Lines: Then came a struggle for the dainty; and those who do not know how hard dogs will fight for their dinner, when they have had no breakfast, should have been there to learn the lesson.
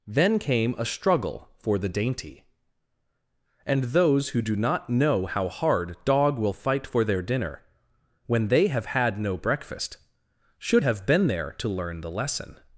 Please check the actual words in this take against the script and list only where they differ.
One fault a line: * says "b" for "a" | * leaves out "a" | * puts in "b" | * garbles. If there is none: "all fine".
* says "dog" for "dogs"